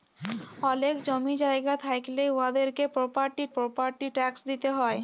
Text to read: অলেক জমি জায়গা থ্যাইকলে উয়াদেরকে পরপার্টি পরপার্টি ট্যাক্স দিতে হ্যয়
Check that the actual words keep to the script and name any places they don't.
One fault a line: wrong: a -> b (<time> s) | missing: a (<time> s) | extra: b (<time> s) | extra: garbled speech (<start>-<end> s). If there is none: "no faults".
no faults